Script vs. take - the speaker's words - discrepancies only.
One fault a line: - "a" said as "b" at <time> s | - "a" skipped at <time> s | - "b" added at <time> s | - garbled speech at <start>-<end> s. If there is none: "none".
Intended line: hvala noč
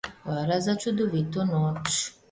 - "za čudovito" added at 0.6 s